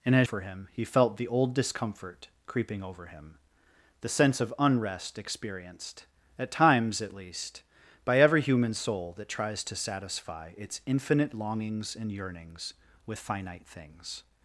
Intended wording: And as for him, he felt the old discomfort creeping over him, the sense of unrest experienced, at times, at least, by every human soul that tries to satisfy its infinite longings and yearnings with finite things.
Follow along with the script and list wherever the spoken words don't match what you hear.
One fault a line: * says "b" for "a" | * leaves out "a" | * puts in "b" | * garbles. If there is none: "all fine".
all fine